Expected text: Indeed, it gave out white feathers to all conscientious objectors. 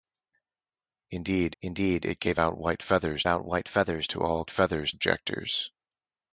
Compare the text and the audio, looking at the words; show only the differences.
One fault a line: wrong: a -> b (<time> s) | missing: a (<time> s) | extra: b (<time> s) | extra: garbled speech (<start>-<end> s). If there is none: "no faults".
extra: indeed (1.6 s)
extra: out white feathers (3.3 s)
wrong: conscientious -> feathers (4.5 s)